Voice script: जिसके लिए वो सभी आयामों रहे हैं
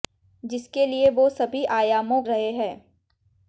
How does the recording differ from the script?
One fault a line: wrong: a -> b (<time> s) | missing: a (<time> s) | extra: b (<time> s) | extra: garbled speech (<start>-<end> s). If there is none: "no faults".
no faults